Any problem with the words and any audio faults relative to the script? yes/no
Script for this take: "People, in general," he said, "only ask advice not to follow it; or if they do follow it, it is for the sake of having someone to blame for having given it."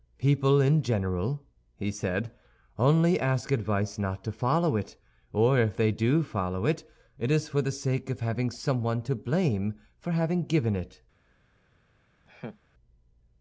yes